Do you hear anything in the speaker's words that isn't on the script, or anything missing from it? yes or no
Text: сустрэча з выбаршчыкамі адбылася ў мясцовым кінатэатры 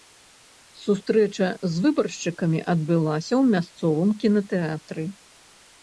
no